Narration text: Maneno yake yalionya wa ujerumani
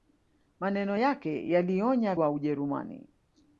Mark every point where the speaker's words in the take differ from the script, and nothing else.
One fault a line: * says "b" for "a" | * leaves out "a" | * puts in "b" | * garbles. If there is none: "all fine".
all fine